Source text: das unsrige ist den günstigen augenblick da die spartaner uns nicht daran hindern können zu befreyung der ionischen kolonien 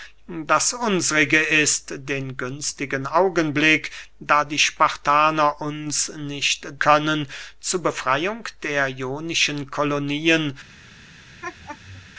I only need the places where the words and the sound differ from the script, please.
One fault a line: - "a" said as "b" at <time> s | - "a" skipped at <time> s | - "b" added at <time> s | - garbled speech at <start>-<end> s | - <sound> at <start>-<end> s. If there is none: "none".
- "daran hindern" skipped at 6.7 s
- laugh at 11.4-12.1 s